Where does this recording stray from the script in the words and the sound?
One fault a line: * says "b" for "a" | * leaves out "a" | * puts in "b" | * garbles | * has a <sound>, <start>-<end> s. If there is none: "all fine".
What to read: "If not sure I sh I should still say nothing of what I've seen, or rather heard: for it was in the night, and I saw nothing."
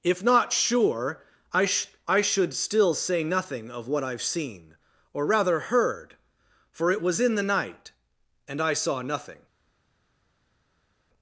all fine